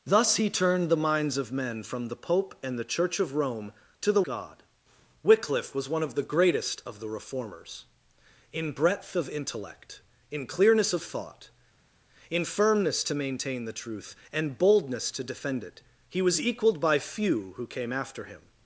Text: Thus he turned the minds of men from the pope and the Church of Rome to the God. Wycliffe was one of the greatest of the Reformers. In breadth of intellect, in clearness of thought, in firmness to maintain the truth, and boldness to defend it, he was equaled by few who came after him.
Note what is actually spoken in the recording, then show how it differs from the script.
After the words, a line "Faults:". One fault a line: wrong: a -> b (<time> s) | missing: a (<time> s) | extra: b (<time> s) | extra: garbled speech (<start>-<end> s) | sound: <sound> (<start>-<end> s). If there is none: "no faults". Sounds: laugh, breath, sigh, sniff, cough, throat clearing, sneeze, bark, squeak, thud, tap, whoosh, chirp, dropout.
Thus he turned the minds of men from the pope and the Church of Rome to the God. Wycliffe was one of the greatest of the Reformers. In breadth of intellect, in clearness of thought, in firmness to maintain the truth, and boldness to defend it, he was equaled by few who came after him.
Faults:
no faults